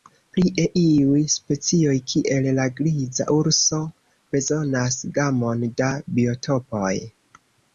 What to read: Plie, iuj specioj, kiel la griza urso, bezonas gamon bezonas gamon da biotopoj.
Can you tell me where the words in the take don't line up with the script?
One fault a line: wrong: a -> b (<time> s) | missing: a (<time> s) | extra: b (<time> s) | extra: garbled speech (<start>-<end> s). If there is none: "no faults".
missing: bezonas gamon (5.7 s)